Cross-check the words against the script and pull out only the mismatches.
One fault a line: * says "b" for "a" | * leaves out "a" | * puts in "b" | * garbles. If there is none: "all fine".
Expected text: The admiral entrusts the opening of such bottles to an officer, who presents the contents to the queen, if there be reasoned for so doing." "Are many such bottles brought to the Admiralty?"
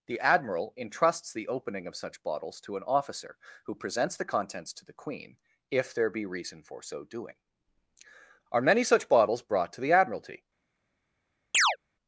* says "reason" for "reasoned"